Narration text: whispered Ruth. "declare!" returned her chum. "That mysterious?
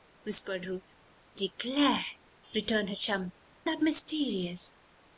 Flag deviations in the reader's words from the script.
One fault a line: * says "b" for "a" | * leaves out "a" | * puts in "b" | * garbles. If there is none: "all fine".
all fine